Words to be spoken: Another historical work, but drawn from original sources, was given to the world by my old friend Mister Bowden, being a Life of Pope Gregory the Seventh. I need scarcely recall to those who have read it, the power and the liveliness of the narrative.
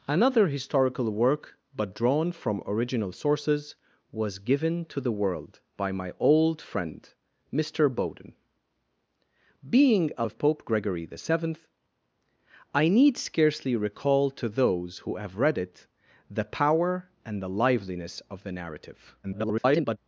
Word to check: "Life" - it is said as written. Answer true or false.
false